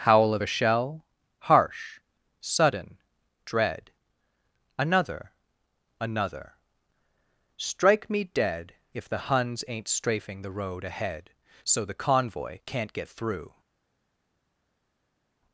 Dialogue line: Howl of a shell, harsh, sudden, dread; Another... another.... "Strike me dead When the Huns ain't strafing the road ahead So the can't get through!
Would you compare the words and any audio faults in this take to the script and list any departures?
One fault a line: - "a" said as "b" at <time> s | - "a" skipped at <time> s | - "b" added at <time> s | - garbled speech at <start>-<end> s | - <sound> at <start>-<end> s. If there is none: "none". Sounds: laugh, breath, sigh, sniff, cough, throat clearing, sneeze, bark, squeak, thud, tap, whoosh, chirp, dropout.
- "When" said as "If" at 8.9 s
- "convoy" added at 11.9 s